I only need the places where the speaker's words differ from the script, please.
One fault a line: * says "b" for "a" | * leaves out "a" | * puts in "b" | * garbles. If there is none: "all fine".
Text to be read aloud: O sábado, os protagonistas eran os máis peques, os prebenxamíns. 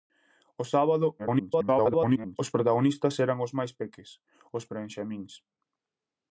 * garbles